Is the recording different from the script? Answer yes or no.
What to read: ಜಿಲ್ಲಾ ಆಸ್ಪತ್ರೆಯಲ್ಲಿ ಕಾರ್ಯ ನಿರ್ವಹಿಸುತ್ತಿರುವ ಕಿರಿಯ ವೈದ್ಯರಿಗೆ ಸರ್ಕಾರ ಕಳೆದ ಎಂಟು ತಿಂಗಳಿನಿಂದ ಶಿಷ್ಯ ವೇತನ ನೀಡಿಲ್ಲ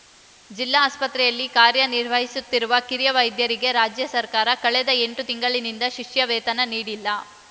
yes